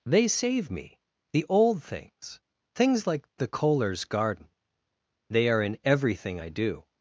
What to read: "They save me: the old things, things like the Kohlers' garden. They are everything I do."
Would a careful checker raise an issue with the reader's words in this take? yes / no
yes